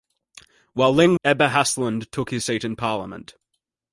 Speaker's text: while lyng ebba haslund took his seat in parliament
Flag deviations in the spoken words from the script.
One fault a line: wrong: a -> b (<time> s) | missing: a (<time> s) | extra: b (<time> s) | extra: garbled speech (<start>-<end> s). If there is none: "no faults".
no faults